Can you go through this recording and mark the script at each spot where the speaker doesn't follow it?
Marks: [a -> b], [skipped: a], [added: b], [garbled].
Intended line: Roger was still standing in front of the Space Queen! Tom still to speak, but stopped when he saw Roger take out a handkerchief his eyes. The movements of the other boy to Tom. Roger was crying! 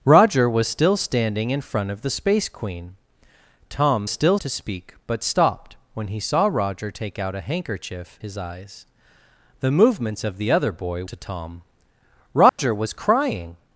Roger was still standing in front of the Space Queen! Tom still to speak, but stopped when he saw Roger take out a handkerchief his eyes. The movements of the other boy to Tom. Roger was crying!